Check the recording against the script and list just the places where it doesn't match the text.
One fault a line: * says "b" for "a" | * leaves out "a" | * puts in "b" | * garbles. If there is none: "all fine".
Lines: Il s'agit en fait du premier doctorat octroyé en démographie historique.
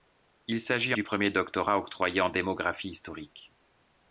* leaves out "en fait"